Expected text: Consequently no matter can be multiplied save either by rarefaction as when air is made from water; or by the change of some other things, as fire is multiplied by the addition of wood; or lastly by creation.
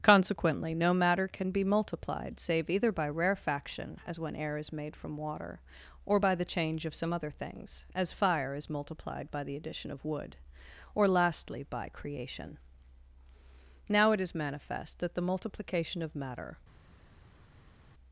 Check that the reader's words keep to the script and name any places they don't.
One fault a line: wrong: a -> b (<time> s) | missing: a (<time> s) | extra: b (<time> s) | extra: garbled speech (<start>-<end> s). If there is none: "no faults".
extra: Now it is manifest that the multiplication of matter (13.9 s)